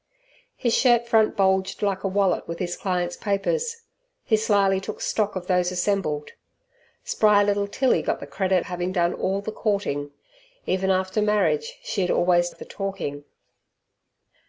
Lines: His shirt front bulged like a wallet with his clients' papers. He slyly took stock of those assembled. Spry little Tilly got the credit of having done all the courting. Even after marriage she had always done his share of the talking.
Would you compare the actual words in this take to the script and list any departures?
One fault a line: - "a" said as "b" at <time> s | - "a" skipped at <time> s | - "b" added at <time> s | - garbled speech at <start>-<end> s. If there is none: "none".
- "of" skipped at 8.7 s
- "done his share" skipped at 12.5 s